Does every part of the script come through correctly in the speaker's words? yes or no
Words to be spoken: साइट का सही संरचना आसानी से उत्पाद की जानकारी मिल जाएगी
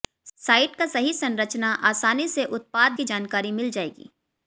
yes